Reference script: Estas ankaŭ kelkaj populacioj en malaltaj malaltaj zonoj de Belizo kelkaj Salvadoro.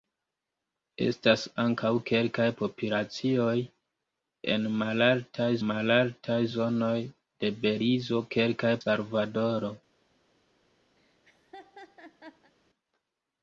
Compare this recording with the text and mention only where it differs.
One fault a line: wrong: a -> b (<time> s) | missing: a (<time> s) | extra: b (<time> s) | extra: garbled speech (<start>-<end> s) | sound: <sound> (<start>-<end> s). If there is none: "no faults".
sound: laugh (11.0-12.5 s)